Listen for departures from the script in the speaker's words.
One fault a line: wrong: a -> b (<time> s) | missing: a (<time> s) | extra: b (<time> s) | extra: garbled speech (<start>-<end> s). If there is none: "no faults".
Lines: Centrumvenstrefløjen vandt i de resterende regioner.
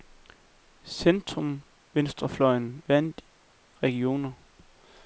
missing: i de resterende (3.2 s)